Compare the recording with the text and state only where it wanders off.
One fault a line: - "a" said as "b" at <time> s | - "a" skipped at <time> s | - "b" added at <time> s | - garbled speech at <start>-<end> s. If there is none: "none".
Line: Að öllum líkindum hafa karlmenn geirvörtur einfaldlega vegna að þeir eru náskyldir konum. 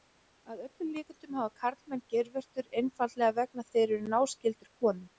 none